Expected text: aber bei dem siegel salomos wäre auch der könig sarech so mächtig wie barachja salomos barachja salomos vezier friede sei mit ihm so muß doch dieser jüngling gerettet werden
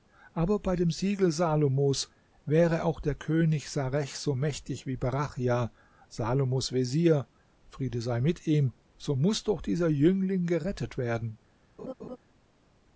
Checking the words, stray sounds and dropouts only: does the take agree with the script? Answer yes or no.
no